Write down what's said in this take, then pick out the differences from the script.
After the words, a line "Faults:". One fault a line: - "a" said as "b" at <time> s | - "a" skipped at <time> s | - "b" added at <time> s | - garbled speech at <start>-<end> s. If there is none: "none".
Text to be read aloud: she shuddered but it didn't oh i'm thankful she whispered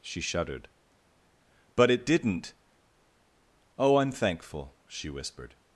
she shuddered but it didn't oh i'm thankful she whispered
Faults:
none